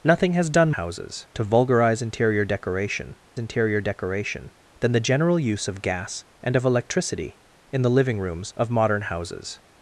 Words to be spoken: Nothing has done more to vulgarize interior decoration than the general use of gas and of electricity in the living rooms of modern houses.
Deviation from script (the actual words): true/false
true